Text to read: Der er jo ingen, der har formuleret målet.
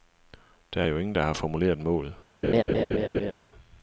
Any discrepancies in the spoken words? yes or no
no